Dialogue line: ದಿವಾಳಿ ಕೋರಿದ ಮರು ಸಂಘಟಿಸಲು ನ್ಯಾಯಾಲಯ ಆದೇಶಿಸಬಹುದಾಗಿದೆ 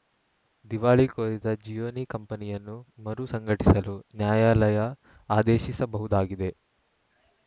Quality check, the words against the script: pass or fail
fail